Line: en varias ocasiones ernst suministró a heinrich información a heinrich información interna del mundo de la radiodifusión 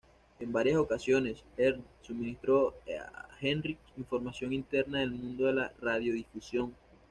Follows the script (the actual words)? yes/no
no